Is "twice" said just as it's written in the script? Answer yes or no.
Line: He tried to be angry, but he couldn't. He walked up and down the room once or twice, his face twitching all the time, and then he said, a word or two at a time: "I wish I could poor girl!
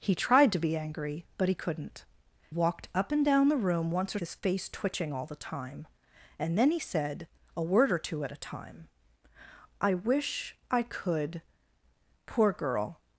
no